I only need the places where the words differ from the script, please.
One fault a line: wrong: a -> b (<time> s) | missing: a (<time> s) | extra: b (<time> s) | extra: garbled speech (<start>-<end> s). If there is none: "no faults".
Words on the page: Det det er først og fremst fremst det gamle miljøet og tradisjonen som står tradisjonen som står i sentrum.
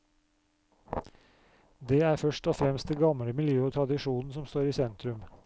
missing: det (2.0 s)
missing: fremst (2.9 s)
missing: tradisjonen som står (4.7 s)